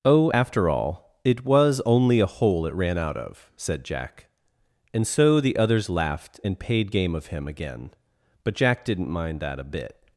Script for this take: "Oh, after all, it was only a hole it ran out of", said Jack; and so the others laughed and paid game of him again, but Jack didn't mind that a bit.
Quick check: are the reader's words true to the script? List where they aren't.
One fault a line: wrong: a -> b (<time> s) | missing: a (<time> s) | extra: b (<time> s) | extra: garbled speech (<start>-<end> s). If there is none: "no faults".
no faults